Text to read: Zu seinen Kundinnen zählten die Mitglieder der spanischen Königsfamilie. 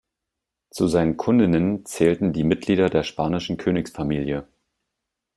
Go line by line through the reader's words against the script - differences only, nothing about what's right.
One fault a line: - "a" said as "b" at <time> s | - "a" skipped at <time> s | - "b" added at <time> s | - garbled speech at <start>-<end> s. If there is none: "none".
none